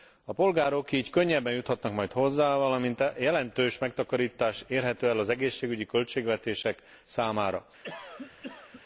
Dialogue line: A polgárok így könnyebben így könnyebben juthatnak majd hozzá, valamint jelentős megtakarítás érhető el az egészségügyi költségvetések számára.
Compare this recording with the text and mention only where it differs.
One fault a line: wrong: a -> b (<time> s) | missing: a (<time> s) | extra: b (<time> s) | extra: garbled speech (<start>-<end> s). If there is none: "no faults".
missing: így könnyebben (1.5 s)